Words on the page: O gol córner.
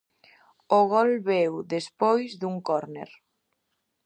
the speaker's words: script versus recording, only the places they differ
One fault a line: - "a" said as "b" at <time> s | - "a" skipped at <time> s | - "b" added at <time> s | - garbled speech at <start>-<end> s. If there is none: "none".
- "veu despois dun" added at 1.3 s